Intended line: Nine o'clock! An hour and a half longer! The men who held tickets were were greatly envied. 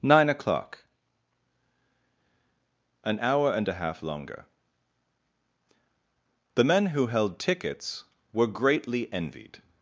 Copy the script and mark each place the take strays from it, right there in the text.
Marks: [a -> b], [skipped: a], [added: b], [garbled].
Nine o'clock! An hour and a half longer! The men who held tickets were [skipped: were] greatly envied.